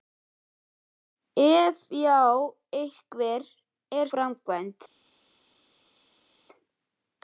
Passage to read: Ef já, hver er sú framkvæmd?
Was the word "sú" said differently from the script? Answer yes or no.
yes